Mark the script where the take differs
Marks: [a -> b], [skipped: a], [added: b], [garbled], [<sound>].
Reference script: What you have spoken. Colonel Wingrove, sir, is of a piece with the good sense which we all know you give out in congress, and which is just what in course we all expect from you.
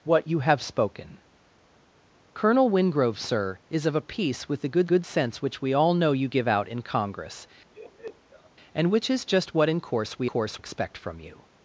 What you have spoken. Colonel Wingrove, sir, is of a piece with the good [added: good] sense which we all know you give out in congress, [laugh] and which is just what in course we [all -> course] expect from you.